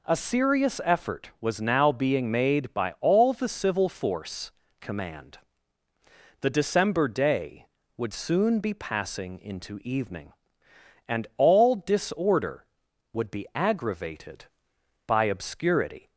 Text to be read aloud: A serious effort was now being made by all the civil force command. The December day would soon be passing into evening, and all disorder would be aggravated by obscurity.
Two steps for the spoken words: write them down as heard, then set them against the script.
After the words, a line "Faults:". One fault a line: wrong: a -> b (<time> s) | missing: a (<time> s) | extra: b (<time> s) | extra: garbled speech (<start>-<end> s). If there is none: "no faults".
A serious effort was now being made by all the civil force command. The December day would soon be passing into evening, and all disorder would be aggravated by obscurity.
Faults:
no faults